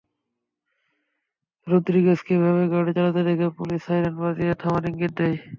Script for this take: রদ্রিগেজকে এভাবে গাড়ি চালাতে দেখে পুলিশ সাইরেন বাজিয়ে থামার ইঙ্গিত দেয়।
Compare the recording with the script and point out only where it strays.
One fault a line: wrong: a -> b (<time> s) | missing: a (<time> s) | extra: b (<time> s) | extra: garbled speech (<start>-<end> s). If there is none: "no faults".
no faults